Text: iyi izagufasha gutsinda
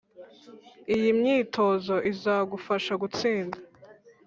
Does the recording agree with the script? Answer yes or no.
no